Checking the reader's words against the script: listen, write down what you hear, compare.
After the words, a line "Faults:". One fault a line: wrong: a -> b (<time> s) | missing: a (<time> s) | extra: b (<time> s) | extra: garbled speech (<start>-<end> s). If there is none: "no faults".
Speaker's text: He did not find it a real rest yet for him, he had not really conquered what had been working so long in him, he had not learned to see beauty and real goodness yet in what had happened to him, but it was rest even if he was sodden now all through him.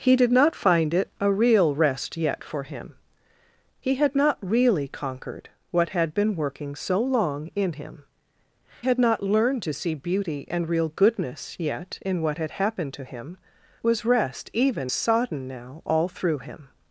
He did not find it a real rest yet for him, he had not really conquered what had been working so long in him, had not learned to see beauty and real goodness yet in what had happened to him, was rest even sodden now all through him.
Faults:
missing: he (8.1 s)
missing: but it (13.4 s)
missing: if he was (14.9 s)